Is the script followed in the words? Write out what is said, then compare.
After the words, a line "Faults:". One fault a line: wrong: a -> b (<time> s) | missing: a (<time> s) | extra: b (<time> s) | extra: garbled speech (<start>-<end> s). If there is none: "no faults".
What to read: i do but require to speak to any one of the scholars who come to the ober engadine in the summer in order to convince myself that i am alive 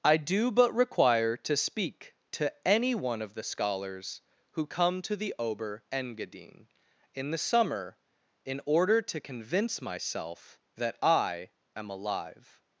i do but require to speak to any one of the scholars who come to the ober engadine in the summer in order to convince myself that i am alive
Faults:
no faults